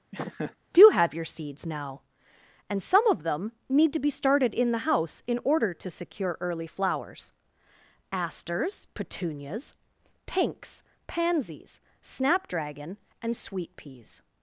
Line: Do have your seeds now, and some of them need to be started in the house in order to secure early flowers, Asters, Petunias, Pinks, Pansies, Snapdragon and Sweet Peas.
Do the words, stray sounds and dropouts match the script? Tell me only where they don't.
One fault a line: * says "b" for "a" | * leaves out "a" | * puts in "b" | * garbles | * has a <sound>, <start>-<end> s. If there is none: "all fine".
* has a laugh, 0.1-0.6 s